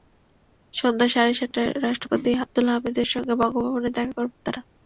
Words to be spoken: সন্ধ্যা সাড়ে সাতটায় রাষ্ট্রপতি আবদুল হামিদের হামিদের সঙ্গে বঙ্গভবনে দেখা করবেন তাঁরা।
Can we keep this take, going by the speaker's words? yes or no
no